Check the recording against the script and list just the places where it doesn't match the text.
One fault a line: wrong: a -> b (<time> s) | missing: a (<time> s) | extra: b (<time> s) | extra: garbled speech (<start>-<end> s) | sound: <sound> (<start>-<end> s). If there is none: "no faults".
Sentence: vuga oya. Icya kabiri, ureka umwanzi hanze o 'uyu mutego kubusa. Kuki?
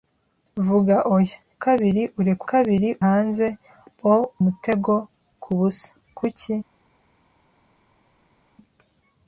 missing: Icya (1.4 s)
wrong: umwanzi -> kabiri (2.5 s)
missing: uyu (4.1 s)